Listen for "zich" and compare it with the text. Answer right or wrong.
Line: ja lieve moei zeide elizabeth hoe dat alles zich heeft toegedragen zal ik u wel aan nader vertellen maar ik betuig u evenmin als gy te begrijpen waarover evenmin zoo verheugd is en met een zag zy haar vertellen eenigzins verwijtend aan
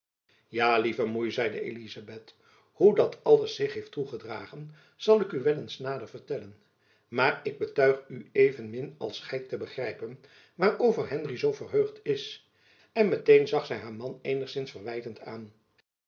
right